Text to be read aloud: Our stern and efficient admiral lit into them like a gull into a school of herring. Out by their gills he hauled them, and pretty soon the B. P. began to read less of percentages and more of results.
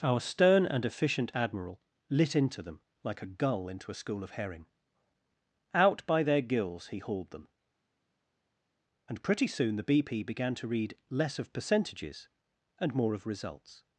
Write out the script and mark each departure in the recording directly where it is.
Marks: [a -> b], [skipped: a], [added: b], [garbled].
Our stern and efficient admiral lit into them like a gull into a school of herring. Out by their gills he hauled them, and pretty soon the B. P. began to read less of percentages and more of results.